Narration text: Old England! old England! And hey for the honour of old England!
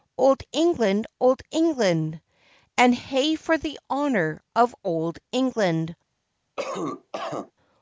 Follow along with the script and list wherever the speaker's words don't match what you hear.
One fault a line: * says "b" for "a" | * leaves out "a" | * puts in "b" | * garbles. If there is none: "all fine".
all fine